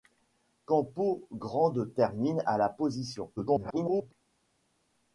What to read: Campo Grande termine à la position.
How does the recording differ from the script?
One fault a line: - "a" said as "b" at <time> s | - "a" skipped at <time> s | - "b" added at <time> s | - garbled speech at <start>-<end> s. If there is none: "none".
- garbled speech at 3.4-4.1 s